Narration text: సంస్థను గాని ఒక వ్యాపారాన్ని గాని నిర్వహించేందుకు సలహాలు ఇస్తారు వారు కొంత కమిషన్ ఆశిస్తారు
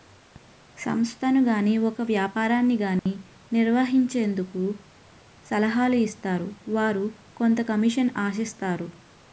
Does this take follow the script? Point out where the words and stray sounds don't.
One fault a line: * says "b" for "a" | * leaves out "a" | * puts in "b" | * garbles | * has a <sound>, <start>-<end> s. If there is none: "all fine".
* has a dropout, 3.0-3.1 s